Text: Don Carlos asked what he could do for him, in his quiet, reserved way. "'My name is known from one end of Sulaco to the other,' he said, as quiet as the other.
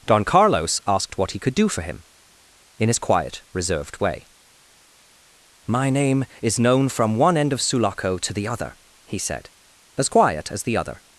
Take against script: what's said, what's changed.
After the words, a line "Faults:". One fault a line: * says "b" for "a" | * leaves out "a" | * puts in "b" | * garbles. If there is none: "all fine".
Don Carlos asked what he could do for him, in his quiet, reserved way. "'My name is known from one end of Sulaco to the other,' he said, as quiet as the other.
Faults:
all fine